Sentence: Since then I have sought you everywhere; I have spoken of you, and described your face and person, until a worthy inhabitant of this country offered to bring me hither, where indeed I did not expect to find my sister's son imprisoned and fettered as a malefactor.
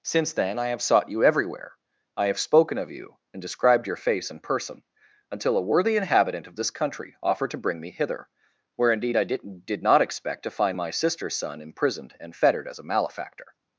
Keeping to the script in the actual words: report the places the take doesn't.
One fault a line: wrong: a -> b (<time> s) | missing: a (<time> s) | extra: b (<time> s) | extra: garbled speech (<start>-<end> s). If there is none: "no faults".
extra: did (9.6 s)